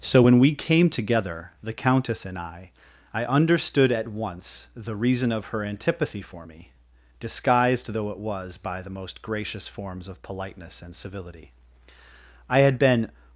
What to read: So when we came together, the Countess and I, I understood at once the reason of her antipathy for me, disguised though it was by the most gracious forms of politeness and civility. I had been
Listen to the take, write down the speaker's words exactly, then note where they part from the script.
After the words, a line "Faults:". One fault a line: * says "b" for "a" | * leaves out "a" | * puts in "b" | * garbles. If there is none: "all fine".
So when we came together, the Countess and I, I understood at once the reason of her antipathy for me, disguised though it was by the most gracious forms of politeness and civility. I had been
Faults:
all fine